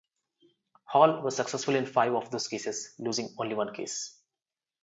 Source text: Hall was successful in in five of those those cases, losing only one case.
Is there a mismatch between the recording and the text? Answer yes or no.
yes